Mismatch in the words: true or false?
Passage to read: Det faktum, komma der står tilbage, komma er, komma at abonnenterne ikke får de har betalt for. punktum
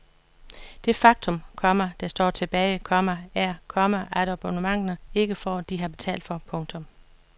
false